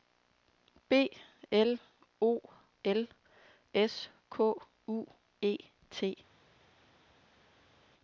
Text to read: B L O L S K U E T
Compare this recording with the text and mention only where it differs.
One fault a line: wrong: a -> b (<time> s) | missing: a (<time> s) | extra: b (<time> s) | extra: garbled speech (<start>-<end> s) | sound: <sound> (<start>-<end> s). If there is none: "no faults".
no faults